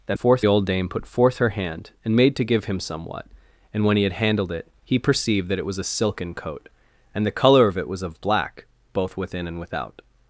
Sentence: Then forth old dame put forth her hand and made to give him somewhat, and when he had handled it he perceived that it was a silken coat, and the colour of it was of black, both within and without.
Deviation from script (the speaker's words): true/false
false